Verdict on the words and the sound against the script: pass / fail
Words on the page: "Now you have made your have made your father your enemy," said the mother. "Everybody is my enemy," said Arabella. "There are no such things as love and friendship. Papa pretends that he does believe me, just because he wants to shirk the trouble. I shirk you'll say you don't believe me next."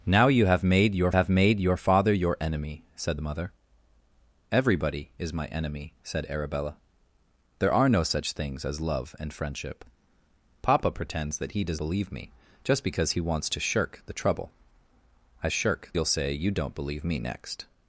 pass